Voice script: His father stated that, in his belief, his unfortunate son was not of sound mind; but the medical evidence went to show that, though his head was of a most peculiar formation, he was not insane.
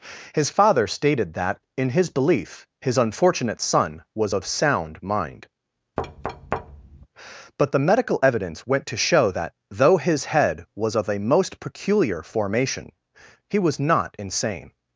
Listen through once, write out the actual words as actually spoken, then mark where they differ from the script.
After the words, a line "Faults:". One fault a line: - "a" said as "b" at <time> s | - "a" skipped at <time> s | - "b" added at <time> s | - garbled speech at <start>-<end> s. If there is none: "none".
His father stated that, in his belief, his unfortunate son was of sound mind; but the medical evidence went to show that, though his head was of a most peculiar formation, he was not insane.
Faults:
- "not" skipped at 4.3 s